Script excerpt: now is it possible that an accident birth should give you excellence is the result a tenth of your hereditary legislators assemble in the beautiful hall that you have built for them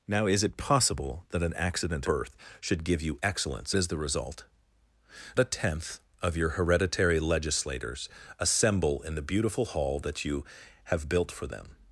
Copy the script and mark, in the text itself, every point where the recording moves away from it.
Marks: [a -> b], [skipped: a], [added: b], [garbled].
now is it possible that an accident birth should give you excellence is the result a tenth of your hereditary legislators assemble in the beautiful hall that you have built for them